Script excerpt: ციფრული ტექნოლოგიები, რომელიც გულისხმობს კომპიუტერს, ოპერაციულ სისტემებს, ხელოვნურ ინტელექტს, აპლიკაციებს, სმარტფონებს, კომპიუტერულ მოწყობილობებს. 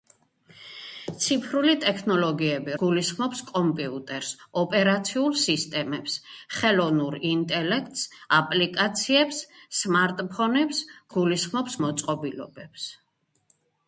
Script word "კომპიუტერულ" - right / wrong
wrong